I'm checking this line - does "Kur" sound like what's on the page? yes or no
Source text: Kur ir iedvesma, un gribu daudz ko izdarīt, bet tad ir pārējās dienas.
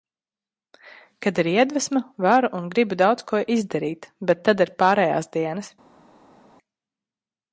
no